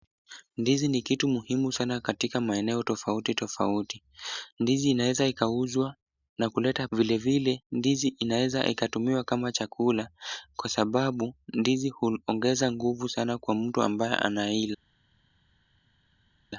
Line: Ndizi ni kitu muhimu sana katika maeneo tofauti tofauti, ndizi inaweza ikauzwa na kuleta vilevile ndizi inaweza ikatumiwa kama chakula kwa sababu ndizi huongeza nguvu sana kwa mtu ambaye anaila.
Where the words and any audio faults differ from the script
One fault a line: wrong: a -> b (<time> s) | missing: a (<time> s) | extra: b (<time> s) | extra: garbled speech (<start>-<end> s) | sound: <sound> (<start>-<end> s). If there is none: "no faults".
no faults